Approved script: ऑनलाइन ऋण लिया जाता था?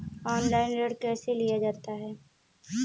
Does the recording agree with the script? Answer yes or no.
no